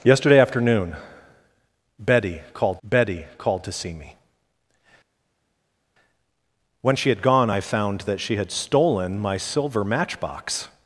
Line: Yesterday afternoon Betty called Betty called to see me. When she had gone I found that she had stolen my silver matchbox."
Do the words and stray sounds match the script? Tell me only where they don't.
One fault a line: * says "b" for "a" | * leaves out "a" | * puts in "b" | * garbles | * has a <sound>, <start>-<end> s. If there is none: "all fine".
all fine